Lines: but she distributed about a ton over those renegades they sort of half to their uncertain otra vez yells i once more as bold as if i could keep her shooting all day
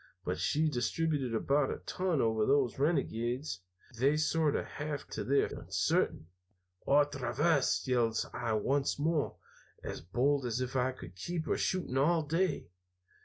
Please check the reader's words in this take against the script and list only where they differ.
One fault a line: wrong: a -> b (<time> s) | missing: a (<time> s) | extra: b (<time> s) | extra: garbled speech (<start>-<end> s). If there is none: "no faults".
no faults